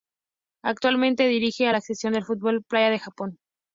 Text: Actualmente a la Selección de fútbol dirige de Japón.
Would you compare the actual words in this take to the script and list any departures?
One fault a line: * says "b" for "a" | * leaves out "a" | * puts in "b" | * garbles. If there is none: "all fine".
* puts in "dirige"
* says "playa" for "dirige"